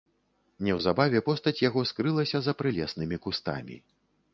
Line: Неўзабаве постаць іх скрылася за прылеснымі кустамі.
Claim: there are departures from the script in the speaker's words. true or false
true